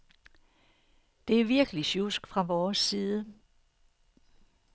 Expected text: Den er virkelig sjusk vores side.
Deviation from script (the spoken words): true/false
true